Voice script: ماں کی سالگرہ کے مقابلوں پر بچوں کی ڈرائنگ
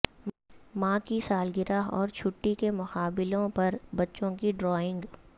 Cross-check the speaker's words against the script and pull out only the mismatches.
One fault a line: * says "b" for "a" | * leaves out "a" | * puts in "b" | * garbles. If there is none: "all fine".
* puts in "اور چھٹی"